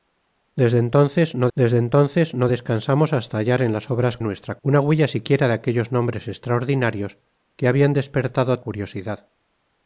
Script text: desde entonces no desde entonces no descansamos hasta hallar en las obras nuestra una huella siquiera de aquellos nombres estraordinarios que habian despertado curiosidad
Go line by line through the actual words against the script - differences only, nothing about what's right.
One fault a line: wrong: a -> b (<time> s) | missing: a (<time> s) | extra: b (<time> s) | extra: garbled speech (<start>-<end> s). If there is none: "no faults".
no faults